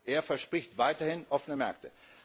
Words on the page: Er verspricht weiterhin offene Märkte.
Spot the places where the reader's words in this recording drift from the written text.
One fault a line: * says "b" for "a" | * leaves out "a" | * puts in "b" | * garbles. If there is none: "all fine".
all fine